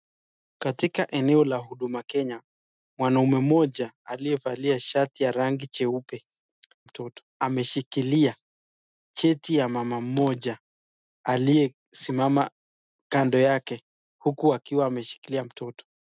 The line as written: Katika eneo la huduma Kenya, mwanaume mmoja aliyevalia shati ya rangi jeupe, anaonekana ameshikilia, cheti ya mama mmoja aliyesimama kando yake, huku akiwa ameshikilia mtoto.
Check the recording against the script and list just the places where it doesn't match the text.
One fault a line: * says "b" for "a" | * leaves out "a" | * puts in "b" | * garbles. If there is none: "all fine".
* says "mtoto" for "anaonekana"